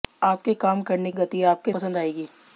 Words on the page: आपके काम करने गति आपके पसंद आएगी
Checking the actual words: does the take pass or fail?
pass